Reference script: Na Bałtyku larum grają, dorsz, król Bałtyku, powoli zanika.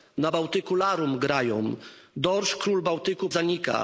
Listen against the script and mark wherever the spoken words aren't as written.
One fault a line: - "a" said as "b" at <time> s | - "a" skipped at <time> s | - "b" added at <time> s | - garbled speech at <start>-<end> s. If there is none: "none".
- "powoli" skipped at 3.3 s